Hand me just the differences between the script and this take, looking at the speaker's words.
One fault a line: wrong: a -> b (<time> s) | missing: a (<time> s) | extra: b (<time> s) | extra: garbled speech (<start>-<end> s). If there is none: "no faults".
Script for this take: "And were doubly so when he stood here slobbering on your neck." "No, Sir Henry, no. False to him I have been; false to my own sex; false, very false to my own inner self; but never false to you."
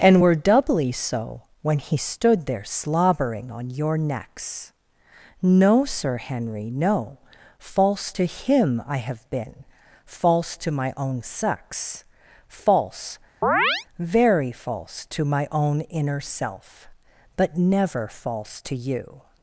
wrong: here -> there (2.5 s)
wrong: neck -> necks (4.0 s)